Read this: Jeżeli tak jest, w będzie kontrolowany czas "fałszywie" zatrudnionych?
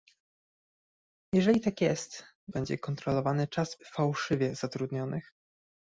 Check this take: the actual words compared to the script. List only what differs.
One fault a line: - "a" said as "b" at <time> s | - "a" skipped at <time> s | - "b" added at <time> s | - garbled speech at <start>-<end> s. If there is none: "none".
none